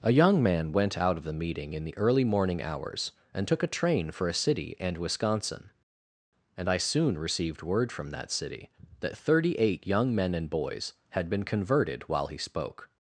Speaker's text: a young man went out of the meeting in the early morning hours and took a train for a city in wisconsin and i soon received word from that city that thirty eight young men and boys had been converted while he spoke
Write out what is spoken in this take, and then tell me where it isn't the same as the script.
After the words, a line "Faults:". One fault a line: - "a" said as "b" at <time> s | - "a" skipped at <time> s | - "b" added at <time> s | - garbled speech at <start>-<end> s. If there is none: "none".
a young man went out of the meeting in the early morning hours and took a train for a city and wisconsin and i soon received word from that city that thirty eight young men and boys had been converted while he spoke
Faults:
- "in" said as "and" at 4.8 s